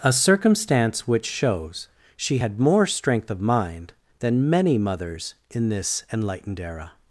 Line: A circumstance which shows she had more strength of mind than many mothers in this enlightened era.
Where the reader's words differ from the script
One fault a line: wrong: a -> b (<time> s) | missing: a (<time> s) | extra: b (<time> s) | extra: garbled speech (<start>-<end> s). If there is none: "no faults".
no faults